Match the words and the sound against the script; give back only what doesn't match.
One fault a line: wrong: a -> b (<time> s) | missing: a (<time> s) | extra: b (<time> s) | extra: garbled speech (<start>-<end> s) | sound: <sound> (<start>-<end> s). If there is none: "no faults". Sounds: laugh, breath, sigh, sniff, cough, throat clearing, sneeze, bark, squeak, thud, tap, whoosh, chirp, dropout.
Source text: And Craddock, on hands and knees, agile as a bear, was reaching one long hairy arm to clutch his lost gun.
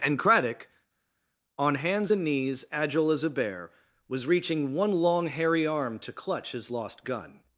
no faults